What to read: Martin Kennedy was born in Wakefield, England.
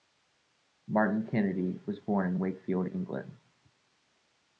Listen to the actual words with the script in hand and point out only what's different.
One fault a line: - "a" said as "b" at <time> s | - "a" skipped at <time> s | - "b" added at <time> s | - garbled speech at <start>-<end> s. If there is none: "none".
none